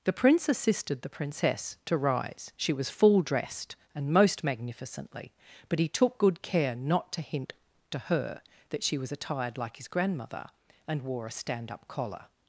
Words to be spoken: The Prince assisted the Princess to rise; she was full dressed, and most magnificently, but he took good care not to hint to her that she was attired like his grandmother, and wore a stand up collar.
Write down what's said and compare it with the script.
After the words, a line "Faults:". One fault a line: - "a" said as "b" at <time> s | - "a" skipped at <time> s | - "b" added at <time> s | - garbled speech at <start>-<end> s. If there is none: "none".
The Prince assisted the Princess to rise; she was full dressed, and most magnificently, but he took good care not to hint to her that she was attired like his grandmother, and wore a stand up collar.
Faults:
none